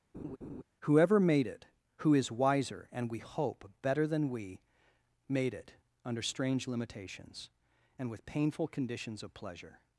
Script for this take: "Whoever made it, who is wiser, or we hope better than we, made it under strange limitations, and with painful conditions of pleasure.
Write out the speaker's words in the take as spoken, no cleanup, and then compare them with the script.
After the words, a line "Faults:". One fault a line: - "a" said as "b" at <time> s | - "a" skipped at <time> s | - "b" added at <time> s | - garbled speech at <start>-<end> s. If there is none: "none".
"Whoever made it, who is wiser, and we hope better than we, made it under strange limitations, and with painful conditions of pleasure.
Faults:
- "or" said as "and" at 2.9 s